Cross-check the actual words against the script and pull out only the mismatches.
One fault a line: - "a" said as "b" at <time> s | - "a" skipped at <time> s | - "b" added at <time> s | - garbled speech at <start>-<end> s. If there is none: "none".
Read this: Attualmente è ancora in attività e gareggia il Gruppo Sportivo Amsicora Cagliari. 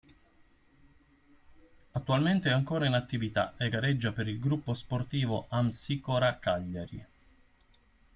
- "per" added at 4.1 s